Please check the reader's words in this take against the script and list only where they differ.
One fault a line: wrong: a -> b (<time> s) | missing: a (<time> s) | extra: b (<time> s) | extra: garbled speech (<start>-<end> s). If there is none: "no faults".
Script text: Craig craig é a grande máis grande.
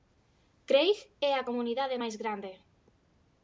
missing: craig (1.0 s)
wrong: grande -> comunidade (1.5 s)